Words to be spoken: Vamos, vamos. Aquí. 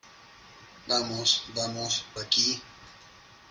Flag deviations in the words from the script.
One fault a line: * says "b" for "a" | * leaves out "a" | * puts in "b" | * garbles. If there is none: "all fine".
all fine